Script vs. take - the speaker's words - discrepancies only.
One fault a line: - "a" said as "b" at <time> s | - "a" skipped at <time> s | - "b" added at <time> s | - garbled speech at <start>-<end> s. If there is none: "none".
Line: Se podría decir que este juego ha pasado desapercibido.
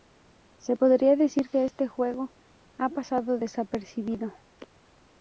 none